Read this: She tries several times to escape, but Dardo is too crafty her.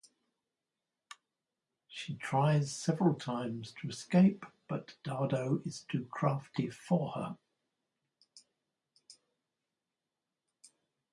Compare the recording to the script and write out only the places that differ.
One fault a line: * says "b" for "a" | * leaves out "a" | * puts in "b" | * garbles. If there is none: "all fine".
* puts in "for"